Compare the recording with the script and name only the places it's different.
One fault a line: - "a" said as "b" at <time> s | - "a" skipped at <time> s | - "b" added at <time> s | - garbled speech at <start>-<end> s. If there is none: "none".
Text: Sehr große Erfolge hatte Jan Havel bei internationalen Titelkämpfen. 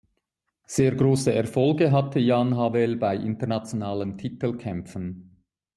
none